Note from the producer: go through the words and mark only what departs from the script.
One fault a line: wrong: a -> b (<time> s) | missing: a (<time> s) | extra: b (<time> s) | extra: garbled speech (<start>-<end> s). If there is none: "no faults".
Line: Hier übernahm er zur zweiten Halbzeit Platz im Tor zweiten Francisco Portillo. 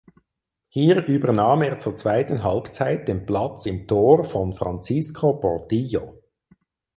extra: den (3.1 s)
wrong: zweiten -> von (4.2 s)